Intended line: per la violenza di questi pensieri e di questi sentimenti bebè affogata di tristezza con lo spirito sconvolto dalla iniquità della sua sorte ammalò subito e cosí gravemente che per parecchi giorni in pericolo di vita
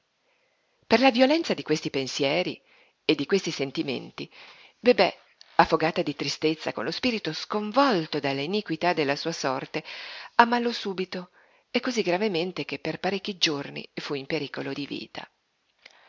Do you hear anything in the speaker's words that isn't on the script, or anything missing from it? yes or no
yes